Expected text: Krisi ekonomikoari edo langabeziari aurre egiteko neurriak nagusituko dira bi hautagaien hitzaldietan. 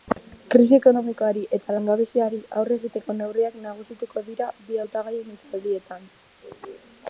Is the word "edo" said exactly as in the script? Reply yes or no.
no